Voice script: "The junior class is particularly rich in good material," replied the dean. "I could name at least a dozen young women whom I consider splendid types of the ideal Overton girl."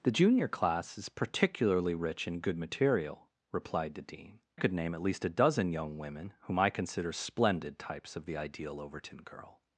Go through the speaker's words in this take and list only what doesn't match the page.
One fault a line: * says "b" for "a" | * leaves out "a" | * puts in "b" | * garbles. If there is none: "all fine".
* leaves out "I"